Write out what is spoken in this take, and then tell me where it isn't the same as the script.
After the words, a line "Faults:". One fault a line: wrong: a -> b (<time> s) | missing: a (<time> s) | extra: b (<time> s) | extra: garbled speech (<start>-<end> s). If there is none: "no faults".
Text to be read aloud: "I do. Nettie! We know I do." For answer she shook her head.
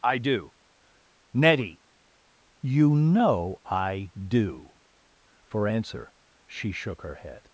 "I do. Nettie! You know I do." For answer she shook her head.
Faults:
wrong: We -> You (2.6 s)